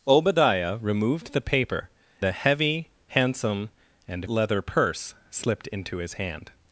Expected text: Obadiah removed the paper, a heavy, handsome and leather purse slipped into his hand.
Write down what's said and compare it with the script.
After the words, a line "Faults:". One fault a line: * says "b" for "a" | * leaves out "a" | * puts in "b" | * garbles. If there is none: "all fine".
Obadiah removed the paper, a heavy, handsome and leather purse slipped into his hand.
Faults:
all fine